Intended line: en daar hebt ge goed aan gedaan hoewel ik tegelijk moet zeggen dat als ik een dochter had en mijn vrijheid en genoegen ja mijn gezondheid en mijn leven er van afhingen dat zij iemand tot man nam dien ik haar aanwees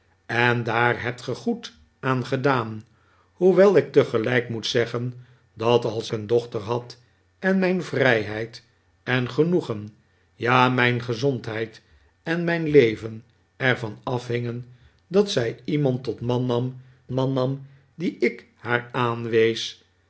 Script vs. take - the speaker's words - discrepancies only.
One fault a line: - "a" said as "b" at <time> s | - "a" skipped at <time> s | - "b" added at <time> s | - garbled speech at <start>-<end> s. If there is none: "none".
- "ik" skipped at 6.1 s
- "man nam" added at 17.1 s